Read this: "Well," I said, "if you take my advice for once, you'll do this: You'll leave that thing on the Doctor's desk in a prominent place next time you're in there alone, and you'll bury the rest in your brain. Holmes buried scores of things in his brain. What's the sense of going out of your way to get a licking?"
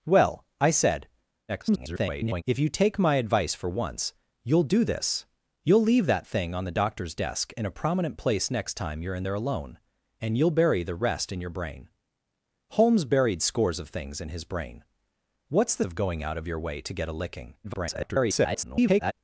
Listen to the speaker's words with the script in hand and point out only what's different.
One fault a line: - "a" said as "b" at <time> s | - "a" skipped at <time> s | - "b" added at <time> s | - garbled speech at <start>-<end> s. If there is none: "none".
- garbled speech at 1.5-2.4 s
- "sense" skipped at 15.8 s
- garbled speech at 17.6-19.1 s